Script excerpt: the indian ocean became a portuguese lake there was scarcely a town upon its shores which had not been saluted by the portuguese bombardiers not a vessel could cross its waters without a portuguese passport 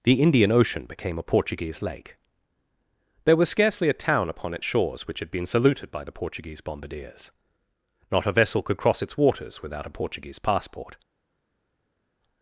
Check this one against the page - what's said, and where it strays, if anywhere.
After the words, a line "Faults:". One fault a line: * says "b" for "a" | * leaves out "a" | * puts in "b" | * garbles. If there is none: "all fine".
the indian ocean became a portuguese lake there was scarcely a town upon its shores which had been saluted by the portuguese bombardiers not a vessel could cross its waters without a portuguese passport
Faults:
* leaves out "not"